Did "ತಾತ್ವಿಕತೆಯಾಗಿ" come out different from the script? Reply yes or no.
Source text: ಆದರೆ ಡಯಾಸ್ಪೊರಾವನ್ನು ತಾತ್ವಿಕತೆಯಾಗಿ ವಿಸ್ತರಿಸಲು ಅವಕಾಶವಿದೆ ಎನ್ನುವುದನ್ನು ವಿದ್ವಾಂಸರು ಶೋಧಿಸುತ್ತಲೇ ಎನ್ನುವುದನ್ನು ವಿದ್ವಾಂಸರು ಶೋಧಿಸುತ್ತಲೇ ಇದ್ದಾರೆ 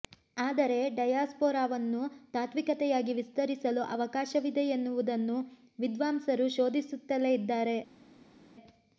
no